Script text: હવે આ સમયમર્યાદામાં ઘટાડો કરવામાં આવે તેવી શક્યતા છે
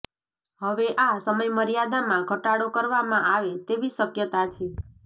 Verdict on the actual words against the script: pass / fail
pass